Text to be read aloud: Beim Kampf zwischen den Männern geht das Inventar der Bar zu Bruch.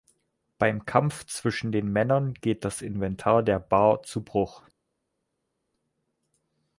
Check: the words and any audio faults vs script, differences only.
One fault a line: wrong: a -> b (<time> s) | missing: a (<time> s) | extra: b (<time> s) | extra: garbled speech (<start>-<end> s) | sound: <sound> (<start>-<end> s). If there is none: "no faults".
no faults